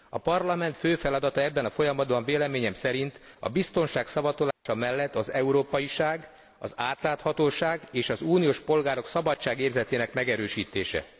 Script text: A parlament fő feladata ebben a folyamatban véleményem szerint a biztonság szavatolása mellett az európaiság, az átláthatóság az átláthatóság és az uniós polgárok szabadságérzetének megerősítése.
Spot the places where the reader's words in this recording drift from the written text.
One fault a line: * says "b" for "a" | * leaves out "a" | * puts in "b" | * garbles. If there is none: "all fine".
* leaves out "az átláthatóság"